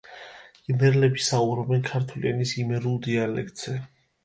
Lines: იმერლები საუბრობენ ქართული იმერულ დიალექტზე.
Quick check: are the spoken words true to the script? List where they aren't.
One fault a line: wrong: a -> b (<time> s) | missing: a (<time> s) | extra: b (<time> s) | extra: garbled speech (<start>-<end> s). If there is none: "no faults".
extra: ენის (2.3 s)